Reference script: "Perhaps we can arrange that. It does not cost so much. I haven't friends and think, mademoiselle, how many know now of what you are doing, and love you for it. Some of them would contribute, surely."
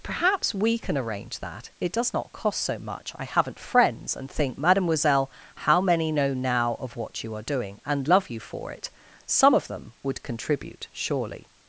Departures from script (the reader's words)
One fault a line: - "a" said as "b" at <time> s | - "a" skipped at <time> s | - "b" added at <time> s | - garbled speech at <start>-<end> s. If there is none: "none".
none